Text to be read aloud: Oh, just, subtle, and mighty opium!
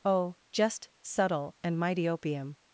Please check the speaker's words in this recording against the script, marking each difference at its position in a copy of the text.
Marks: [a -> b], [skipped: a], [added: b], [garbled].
Oh, just, subtle, and mighty opium!